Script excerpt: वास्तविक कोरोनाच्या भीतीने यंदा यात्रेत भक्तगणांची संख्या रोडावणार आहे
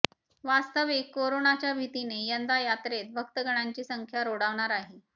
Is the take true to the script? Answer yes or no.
yes